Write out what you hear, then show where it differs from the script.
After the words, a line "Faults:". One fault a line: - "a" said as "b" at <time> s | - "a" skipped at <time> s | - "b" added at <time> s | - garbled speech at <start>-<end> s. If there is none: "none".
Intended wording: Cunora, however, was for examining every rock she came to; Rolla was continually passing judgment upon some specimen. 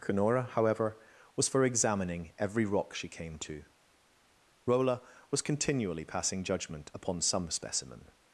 Cunora, however, was for examining every rock she came to; Rolla was continually passing judgment upon some specimen.
Faults:
none